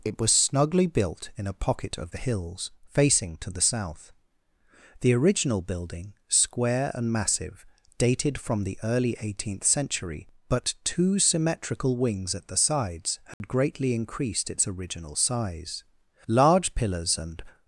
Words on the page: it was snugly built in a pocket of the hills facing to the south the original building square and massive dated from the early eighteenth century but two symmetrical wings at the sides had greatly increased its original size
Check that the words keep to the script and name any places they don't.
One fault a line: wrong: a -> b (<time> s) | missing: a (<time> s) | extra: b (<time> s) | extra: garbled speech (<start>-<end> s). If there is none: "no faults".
extra: large pillars and (16.3 s)